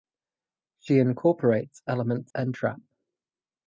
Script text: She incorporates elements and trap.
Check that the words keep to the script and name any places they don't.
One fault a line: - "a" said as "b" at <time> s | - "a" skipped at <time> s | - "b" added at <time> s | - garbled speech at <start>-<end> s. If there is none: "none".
none